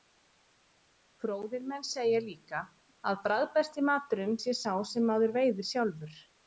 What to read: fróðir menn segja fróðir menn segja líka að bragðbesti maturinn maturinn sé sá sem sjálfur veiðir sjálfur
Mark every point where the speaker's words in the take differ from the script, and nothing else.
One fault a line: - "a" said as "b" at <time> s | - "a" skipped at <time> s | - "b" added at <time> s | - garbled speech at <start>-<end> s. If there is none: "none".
- "fróðir menn segja" skipped at 2.2 s
- "maturinn" skipped at 4.4 s
- "sjálfur" said as "maður" at 5.1 s